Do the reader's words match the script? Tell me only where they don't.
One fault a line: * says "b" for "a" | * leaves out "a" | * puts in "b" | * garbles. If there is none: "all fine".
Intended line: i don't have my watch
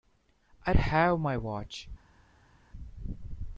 * leaves out "don't"